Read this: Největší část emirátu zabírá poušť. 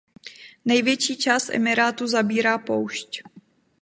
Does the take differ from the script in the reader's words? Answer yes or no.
no